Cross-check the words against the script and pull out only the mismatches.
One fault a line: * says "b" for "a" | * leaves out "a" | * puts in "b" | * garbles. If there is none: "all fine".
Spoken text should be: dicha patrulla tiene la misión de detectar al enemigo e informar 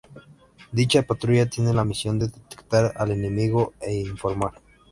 all fine